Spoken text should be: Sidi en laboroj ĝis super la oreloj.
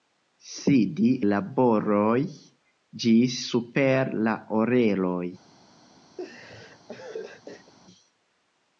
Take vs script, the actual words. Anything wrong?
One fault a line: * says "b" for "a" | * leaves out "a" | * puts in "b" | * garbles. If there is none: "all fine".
* leaves out "en"